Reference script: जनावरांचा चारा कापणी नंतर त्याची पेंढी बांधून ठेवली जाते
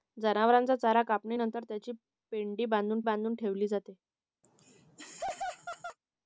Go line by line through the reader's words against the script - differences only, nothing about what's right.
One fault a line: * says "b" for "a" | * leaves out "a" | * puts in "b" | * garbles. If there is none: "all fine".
* puts in "बांधून"